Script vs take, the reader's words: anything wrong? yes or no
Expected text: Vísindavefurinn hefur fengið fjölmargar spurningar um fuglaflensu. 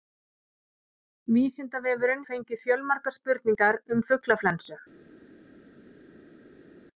yes